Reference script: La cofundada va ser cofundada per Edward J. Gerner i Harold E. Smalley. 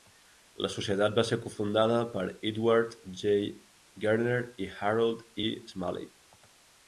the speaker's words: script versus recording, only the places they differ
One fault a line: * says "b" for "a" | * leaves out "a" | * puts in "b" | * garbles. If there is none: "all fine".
* says "societat" for "cofundada"